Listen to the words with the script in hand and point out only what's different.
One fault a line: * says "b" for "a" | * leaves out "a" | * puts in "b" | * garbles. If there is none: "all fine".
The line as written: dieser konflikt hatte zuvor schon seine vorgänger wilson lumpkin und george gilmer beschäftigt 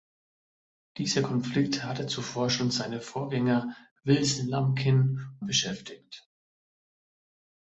* leaves out "und george gilmer"